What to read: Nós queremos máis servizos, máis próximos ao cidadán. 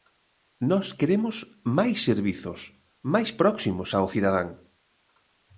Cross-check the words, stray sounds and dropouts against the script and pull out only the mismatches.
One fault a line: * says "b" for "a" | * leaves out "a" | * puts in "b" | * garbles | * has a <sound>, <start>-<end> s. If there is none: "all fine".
all fine